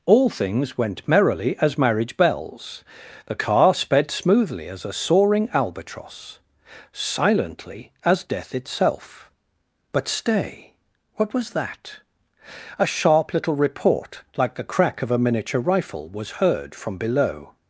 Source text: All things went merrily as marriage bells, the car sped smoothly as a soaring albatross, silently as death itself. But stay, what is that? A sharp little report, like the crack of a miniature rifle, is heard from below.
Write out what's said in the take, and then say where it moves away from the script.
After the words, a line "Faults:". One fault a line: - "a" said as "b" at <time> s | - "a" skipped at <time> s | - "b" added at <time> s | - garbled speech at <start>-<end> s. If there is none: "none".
All things went merrily as marriage bells, the car sped smoothly as a soaring albatross, silently as death itself. But stay, what was that? A sharp little report, like the crack of a miniature rifle, was heard from below.
Faults:
- "is" said as "was" at 11.3 s
- "is" said as "was" at 16.1 s